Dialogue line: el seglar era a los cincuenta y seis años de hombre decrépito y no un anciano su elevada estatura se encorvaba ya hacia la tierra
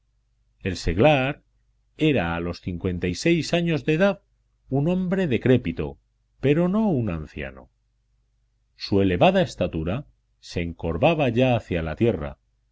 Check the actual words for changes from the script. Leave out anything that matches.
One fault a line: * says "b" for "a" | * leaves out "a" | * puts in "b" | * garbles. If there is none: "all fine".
* puts in "edad un"
* says "pero" for "y"